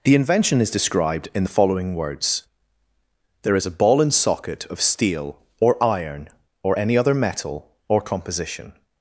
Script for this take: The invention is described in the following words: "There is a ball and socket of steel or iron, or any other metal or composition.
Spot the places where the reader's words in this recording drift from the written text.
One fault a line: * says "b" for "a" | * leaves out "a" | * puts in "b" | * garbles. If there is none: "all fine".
all fine